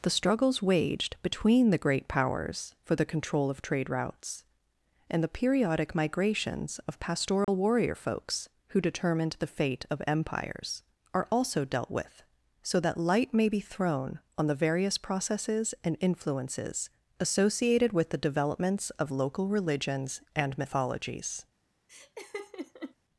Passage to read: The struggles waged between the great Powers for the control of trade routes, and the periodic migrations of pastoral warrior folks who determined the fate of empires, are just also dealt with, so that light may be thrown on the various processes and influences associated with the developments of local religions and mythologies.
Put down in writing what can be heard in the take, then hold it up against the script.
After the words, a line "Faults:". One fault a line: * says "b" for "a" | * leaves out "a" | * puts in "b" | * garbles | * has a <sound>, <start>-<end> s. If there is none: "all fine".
The struggles waged between the great Powers for the control of trade routes, and the periodic migrations of pastoral warrior folks who determined the fate of empires, are also dealt with, so that light may be thrown on the various processes and influences associated with the developments of local religions and mythologies.
Faults:
* has a dropout, 7.4-7.5 s
* leaves out "just"
* has a laugh, 21.9-23.0 s